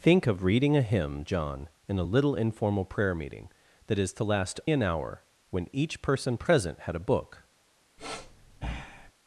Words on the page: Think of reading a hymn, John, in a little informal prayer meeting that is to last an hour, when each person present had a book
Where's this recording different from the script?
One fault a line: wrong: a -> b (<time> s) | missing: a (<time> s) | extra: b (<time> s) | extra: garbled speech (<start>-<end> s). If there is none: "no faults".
no faults